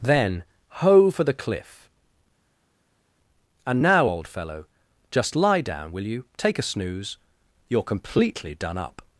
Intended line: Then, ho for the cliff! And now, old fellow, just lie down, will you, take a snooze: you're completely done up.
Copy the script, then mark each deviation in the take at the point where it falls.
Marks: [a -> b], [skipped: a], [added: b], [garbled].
Then, ho for the cliff! And now, old fellow, just lie down, will you, take a snooze: you're completely done up.